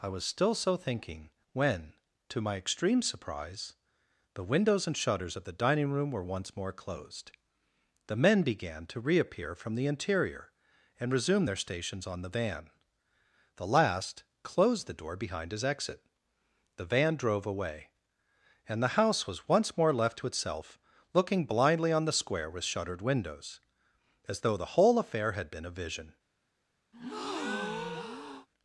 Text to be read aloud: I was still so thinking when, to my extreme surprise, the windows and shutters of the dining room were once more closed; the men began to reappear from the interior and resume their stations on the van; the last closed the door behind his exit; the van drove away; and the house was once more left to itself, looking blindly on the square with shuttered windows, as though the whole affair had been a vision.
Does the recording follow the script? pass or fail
pass